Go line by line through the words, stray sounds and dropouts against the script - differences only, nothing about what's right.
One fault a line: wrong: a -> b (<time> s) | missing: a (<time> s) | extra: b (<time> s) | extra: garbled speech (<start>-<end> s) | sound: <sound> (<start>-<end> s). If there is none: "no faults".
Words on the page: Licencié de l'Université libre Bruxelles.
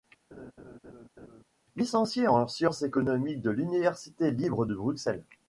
sound: laugh (0.3-1.4 s)
extra: en sciences économiques (2.3 s)
extra: de (4.6 s)